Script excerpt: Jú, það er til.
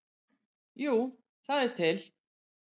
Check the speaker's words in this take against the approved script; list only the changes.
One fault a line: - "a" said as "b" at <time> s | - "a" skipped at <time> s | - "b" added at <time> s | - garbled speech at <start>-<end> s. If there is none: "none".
none